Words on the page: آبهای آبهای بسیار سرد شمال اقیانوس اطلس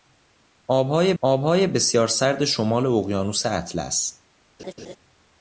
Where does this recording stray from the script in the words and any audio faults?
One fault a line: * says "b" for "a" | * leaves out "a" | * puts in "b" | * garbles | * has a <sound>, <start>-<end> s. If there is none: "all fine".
* has a laugh, 4.6-5.0 s